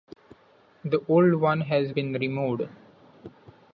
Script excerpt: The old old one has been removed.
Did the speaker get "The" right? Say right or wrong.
right